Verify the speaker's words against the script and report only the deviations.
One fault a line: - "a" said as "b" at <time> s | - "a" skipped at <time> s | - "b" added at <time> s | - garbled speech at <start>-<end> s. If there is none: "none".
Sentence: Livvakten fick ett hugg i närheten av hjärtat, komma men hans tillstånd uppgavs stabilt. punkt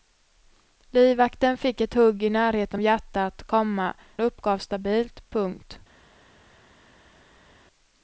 - "av" skipped at 2.8 s
- "men hans tillstånd" skipped at 3.9 s